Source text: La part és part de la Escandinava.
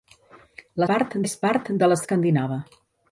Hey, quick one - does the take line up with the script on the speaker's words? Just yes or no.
yes